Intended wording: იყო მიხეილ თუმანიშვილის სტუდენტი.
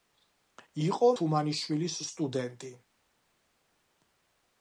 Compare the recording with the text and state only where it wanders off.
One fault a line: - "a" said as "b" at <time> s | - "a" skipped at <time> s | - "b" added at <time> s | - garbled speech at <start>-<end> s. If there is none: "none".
- "მიხეილ" skipped at 1.1 s